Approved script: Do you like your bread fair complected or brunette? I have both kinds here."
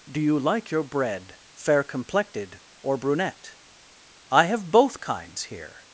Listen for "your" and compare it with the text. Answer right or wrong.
right